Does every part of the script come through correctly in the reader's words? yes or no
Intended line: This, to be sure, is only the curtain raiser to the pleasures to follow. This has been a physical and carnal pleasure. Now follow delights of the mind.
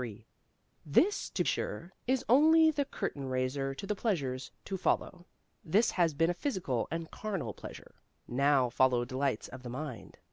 no